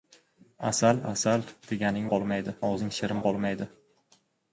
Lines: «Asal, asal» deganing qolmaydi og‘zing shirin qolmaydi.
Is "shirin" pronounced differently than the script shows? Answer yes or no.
no